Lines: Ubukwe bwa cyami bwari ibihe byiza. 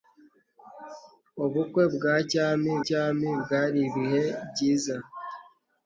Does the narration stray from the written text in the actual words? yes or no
yes